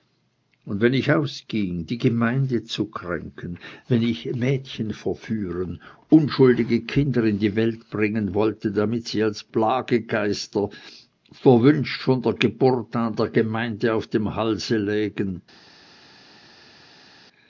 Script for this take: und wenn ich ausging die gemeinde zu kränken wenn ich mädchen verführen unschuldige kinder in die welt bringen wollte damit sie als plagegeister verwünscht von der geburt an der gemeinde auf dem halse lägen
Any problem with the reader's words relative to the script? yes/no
no